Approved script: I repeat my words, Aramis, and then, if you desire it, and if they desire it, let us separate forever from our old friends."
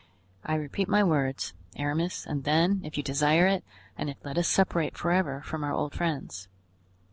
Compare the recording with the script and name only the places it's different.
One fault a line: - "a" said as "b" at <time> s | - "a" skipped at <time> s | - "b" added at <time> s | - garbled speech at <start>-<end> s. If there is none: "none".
- "they desire it" skipped at 4.2 s